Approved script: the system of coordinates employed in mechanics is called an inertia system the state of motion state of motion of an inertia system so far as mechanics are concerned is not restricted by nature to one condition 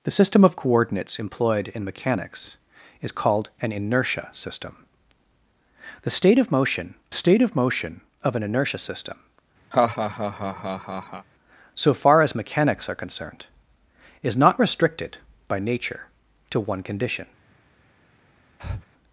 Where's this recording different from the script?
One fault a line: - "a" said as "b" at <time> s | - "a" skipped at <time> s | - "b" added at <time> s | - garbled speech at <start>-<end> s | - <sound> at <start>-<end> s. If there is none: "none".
- laugh at 9.7-11.3 s
- breath at 18.6-18.8 s